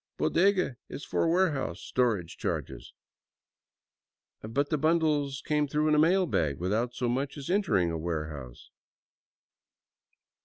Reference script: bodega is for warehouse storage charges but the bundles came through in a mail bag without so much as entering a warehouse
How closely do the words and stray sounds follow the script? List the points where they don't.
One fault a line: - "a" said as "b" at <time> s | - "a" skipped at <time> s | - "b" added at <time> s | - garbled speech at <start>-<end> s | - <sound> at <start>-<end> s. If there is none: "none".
none